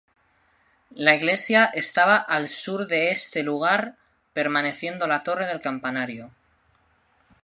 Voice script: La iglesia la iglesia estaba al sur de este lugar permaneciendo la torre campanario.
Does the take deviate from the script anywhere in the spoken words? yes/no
yes